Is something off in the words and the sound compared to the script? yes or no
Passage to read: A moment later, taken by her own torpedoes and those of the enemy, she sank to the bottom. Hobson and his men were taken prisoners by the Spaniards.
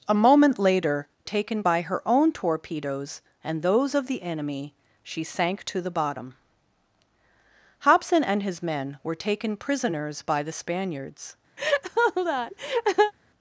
yes